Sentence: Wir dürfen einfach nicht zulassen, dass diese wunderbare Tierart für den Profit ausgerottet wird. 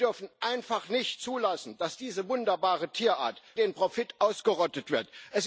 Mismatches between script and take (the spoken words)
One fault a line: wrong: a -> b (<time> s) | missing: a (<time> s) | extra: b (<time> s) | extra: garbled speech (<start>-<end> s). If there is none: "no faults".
missing: für (3.4 s)